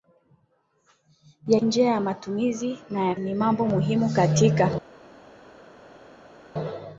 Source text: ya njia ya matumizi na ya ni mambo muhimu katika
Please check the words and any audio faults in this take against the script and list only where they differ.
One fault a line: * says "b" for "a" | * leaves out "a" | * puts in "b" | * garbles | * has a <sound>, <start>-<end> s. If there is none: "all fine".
all fine